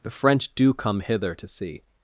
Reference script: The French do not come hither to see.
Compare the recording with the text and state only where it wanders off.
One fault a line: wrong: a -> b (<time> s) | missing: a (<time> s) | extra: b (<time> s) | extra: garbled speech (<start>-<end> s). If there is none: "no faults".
missing: not (0.7 s)